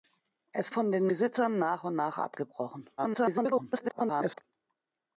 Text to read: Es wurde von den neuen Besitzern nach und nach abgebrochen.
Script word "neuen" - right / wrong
wrong